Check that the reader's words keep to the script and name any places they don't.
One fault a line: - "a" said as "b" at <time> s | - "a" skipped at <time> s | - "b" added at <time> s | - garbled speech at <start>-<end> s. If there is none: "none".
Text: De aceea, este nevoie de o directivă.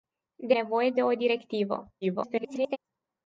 - "aceea este" skipped at 0.6 s
- garbled speech at 2.0-2.8 s